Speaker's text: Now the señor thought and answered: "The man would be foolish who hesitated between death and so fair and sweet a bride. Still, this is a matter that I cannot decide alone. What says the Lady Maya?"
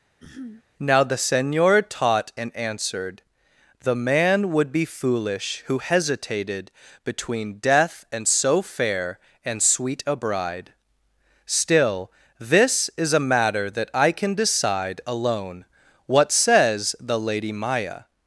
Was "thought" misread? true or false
true